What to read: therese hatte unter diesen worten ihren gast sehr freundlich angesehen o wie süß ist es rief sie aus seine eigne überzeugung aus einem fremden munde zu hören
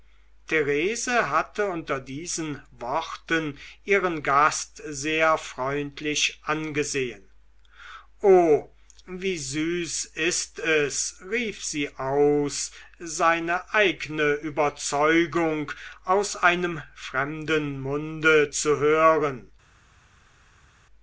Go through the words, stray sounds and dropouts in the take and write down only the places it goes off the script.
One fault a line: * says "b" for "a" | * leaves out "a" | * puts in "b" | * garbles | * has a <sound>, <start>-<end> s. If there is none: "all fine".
all fine